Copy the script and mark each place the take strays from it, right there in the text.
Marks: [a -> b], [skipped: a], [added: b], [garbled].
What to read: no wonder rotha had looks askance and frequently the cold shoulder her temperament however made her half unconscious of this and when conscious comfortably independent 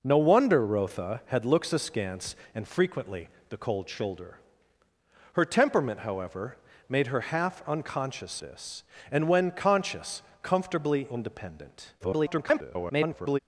no wonder rotha had looks askance and frequently the cold shoulder her temperament however made her half unconscious [skipped: of] this and when conscious comfortably independent [garbled]